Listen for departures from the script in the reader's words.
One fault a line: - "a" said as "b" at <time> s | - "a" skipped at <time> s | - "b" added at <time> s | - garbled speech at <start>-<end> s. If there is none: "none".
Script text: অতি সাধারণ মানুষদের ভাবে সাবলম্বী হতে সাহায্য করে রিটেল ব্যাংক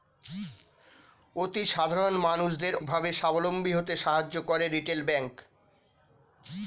none